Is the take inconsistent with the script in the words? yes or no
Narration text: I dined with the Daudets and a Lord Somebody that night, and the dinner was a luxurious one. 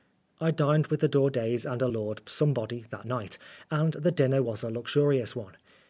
no